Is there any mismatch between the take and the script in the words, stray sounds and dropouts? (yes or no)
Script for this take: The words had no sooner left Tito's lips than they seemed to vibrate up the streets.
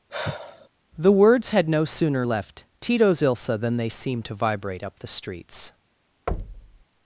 yes